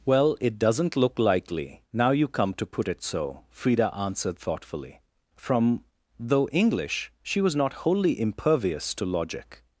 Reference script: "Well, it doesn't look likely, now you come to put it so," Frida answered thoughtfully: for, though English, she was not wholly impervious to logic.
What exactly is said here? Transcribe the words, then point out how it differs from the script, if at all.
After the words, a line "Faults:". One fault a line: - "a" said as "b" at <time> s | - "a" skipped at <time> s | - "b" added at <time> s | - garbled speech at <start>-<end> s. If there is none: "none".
"Well, it doesn't look likely, now you come to put it so," Frida answered thoughtfully: from, though English, she was not wholly impervious to logic.
Faults:
- "for" said as "from" at 5.3 s